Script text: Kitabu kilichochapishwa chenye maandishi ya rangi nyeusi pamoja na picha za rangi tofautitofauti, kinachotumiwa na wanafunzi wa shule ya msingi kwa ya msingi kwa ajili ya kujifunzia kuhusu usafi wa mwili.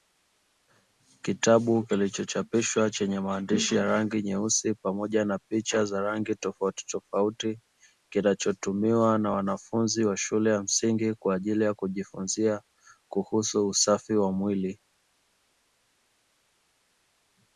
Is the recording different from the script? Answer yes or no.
yes